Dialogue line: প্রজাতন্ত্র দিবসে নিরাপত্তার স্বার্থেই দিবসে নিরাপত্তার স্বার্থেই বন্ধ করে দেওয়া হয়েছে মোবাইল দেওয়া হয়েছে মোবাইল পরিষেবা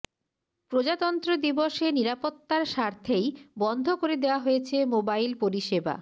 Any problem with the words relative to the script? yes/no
yes